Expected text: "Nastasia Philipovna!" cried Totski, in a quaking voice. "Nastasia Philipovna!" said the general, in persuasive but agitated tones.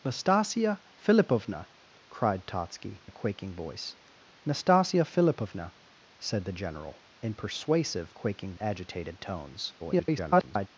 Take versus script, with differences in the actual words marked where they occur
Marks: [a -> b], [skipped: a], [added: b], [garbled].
"Nastasia Philipovna!" cried Totski, [skipped: in] a quaking voice. "Nastasia Philipovna!" said the general, in persuasive [but -> quaking] agitated tones. [garbled]